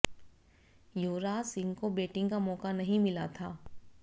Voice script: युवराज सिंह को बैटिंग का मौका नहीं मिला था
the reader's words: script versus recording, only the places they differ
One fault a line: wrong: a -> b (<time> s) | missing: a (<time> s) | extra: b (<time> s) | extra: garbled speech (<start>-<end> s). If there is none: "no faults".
no faults